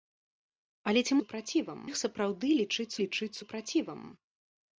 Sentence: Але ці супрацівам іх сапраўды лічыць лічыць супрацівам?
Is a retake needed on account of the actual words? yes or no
no